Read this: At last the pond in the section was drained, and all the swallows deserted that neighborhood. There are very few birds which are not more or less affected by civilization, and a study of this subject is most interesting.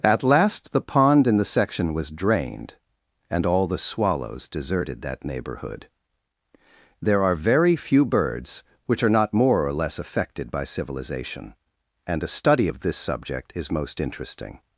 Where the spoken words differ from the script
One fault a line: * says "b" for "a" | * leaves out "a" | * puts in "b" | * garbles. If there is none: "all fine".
all fine